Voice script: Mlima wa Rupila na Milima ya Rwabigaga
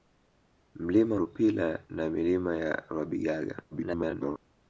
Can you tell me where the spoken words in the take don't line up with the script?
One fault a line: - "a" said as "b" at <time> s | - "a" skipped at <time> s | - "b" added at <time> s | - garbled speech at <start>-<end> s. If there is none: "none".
- "wa" skipped at 1.1 s
- garbled speech at 3.7-4.4 s